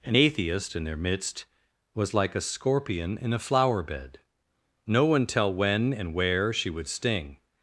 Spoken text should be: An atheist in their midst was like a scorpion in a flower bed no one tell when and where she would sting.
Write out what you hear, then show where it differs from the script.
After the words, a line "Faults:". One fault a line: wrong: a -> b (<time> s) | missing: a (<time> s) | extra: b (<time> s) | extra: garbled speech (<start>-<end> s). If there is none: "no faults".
An atheist in their midst was like a scorpion in a flower bed no one tell when and where she would sting.
Faults:
no faults